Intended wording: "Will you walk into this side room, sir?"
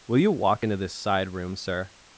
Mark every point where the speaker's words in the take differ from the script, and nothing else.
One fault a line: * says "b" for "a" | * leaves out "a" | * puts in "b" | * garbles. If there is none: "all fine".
all fine